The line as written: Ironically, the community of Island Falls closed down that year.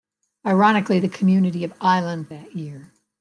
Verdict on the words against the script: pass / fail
fail